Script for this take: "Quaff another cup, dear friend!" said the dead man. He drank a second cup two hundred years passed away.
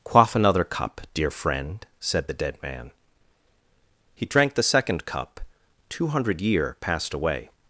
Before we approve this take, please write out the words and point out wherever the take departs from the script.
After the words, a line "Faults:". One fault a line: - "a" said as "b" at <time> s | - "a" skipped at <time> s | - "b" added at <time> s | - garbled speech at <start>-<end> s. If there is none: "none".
"Quaff another cup, dear friend!" said the dead man. He drank the second cup two hundred year passed away.
Faults:
- "a" said as "the" at 4.5 s
- "years" said as "year" at 6.4 s